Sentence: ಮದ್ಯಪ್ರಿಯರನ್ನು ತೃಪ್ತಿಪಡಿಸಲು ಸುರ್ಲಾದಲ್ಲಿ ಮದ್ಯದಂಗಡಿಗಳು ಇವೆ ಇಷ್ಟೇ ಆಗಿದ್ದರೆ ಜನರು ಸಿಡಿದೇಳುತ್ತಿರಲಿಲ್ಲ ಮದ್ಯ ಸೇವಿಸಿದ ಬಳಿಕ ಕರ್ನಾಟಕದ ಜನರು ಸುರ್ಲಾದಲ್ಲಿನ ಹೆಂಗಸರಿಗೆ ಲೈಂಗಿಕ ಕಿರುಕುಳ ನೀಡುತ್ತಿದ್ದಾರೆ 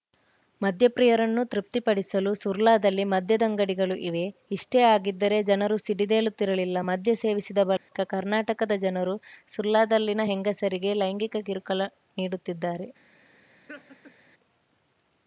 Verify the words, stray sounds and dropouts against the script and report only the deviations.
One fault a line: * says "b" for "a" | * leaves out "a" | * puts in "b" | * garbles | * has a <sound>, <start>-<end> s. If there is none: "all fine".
* has a dropout, 7.8-7.9 s
* has a laugh, 13.7-14.1 s